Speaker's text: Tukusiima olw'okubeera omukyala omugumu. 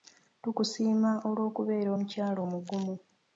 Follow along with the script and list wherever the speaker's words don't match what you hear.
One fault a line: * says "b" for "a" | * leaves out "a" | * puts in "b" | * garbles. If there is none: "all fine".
all fine